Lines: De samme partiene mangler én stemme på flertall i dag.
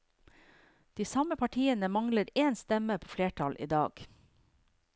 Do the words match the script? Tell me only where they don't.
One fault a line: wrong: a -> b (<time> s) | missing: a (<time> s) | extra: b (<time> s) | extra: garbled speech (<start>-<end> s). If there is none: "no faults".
no faults